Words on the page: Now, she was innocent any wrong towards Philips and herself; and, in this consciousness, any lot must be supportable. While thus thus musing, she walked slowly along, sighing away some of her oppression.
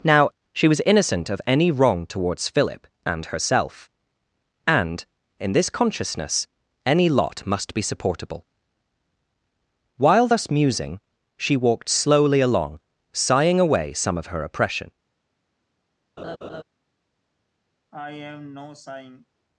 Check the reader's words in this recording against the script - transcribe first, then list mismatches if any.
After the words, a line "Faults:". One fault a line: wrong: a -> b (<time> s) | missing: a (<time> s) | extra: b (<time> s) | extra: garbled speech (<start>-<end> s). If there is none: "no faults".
Now, she was innocent of any wrong towards Philip and herself; and, in this consciousness, any lot must be supportable. While thus musing, she walked slowly along, sighing away some of her oppression.
Faults:
extra: of (1.3 s)
wrong: Philips -> Philip (2.5 s)
missing: thus (10.5 s)